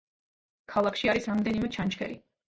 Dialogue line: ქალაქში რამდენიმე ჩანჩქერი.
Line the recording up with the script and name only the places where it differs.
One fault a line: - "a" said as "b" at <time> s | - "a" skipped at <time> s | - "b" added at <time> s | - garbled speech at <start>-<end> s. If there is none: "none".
- "არის" added at 1.1 s